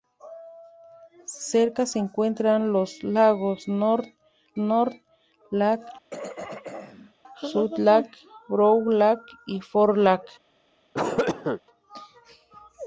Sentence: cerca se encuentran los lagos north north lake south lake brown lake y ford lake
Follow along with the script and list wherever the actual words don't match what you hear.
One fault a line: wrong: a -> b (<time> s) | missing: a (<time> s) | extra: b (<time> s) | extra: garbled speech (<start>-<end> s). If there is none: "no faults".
no faults